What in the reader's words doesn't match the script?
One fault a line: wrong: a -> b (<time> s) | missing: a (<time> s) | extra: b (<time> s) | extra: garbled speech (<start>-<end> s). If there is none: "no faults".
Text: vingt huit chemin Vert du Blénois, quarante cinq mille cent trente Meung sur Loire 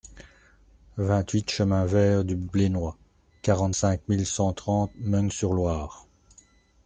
no faults